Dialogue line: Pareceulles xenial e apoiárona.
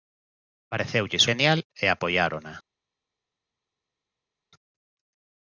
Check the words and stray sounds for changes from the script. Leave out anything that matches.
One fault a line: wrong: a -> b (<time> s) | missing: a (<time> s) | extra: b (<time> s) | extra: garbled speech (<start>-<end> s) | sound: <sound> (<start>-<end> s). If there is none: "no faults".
no faults